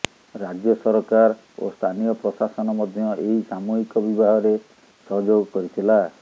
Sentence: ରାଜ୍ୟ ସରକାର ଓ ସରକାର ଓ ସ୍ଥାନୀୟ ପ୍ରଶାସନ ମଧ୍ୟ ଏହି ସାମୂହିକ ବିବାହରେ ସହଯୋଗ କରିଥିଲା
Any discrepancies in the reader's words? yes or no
yes